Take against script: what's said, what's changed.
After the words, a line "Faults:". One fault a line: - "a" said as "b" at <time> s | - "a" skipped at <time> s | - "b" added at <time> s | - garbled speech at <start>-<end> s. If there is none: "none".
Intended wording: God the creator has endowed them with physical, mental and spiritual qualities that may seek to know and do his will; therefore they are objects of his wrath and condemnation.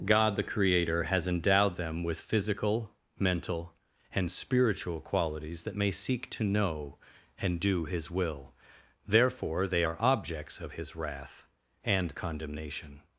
God the creator has endowed them with physical, mental and spiritual qualities that may seek to know and do his will; therefore they are objects of his wrath and condemnation.
Faults:
none